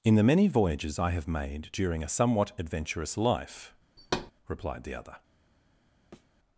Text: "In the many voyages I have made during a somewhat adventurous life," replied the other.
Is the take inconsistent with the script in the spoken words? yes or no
no